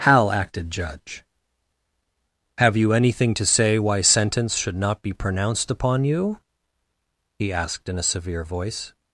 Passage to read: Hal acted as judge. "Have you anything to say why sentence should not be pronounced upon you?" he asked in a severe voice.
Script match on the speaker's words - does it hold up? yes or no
no